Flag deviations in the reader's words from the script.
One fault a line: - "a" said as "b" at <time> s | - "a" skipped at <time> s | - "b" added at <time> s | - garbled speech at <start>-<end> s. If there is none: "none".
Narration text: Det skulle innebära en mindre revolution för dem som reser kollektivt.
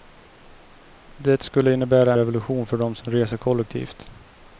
- "en mindre" skipped at 2.1 s